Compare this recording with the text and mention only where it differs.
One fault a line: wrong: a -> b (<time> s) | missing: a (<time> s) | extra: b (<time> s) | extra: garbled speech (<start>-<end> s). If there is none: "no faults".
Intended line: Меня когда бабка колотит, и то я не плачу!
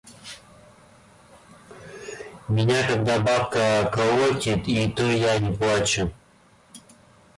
no faults